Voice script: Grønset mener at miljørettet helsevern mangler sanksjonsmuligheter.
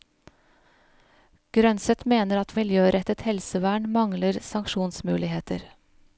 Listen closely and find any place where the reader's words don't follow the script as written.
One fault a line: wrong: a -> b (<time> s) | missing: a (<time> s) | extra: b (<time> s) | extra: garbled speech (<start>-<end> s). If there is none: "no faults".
no faults